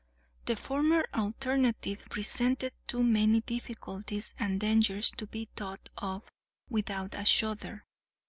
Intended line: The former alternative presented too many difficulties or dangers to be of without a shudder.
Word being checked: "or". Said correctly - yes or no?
no